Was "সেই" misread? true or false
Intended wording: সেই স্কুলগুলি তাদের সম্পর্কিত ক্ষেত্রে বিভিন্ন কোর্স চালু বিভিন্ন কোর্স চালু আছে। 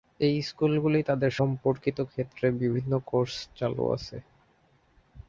true